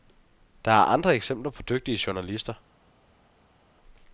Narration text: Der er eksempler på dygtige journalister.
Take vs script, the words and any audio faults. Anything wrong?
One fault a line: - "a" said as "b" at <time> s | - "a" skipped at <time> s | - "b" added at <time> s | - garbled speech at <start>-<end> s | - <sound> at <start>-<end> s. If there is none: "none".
- "andre" added at 0.8 s